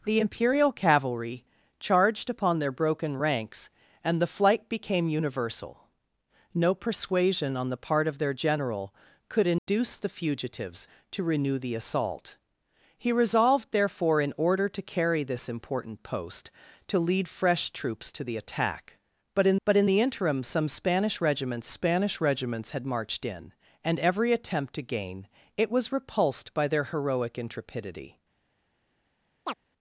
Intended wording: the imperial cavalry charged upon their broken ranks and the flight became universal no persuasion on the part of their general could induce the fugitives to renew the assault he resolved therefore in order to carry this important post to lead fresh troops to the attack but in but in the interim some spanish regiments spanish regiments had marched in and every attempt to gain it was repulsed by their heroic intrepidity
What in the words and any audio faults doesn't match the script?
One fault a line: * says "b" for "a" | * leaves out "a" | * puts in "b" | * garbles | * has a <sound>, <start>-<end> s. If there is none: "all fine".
* has a dropout, 9.6-9.7 s
* has a chirp, 29.5-29.5 s